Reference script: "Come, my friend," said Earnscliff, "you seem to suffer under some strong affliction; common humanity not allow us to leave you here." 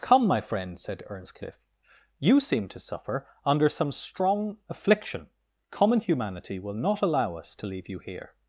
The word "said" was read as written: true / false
true